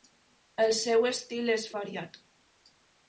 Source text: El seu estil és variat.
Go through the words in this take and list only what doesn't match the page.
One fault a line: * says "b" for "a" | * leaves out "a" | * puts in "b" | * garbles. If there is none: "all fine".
all fine